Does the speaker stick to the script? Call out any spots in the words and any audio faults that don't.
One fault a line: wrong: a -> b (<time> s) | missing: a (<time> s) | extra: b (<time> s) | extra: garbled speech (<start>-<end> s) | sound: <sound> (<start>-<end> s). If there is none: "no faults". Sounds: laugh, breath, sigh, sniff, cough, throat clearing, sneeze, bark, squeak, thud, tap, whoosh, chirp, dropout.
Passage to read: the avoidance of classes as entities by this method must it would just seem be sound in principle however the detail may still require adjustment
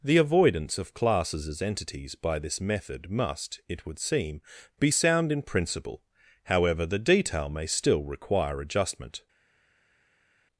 missing: just (4.0 s)